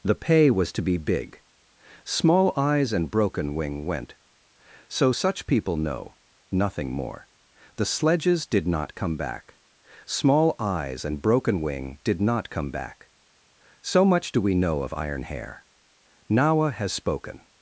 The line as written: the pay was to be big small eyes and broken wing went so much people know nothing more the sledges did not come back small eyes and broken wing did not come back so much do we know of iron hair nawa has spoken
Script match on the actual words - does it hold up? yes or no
no